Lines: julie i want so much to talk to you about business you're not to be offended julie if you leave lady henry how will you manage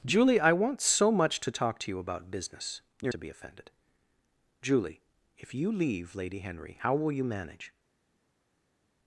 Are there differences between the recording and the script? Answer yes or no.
yes